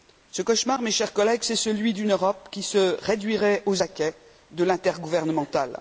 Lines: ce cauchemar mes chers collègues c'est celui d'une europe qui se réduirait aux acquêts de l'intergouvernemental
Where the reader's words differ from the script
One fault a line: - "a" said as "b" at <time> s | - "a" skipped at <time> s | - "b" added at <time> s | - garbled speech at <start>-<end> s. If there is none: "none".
none